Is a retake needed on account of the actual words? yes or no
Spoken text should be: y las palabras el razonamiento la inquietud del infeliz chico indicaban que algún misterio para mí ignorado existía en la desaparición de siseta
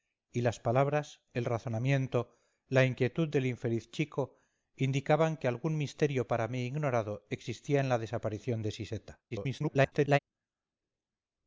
yes